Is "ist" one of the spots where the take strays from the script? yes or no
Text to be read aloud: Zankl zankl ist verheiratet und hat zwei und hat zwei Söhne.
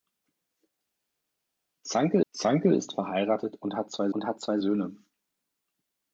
no